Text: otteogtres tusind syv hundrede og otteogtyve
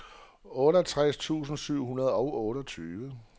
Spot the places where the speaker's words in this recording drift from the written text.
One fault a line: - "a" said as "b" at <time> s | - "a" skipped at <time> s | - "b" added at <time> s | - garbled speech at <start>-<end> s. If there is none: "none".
none